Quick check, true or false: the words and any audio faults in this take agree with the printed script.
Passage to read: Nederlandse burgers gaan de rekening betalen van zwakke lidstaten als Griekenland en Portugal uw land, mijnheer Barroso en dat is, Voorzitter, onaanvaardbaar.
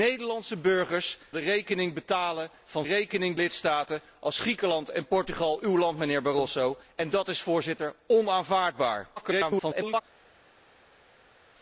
false